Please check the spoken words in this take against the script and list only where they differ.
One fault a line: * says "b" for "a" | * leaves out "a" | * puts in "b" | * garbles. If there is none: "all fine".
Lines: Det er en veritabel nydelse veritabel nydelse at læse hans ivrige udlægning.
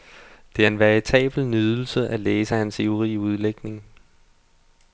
* leaves out "veritabel nydelse"